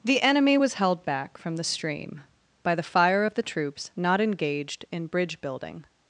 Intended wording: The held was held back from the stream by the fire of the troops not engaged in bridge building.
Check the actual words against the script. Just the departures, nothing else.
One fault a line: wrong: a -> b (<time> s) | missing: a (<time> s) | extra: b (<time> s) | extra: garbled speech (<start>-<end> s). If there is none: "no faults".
wrong: held -> enemy (0.2 s)